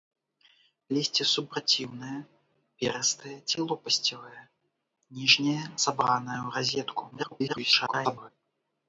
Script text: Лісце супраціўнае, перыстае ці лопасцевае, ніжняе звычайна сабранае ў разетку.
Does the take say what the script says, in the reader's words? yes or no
no